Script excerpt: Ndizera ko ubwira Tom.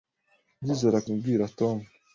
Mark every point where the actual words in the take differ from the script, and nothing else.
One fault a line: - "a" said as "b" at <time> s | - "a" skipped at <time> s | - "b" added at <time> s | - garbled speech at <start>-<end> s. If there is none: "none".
none